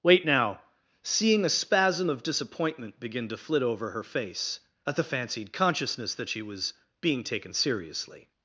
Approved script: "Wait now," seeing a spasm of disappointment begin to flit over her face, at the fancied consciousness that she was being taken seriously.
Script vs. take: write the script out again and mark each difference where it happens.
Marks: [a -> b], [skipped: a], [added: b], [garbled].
"Wait now," seeing a spasm of disappointment begin to flit over her face, at the fancied consciousness that she was being taken seriously.